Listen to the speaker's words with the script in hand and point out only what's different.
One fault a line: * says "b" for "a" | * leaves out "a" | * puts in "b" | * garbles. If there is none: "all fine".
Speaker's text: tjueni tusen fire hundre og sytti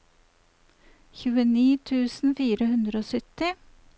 all fine